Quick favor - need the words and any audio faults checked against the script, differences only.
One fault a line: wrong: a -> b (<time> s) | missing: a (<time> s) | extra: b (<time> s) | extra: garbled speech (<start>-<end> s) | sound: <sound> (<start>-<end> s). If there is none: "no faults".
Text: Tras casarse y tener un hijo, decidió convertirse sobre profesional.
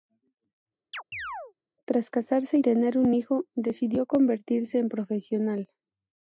sound: chirp (0.9-1.5 s)
wrong: sobre -> en (4.8 s)